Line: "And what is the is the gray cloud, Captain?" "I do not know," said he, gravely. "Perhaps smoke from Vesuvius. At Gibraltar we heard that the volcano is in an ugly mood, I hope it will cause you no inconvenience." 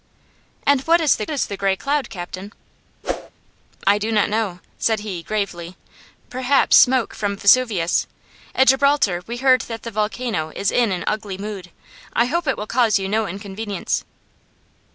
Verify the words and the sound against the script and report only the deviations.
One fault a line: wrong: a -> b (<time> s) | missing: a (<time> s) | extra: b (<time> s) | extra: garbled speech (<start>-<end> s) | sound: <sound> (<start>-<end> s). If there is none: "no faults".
sound: whoosh (3.0-3.3 s)